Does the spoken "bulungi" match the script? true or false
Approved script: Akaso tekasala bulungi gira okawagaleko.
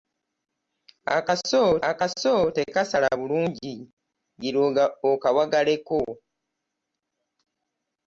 true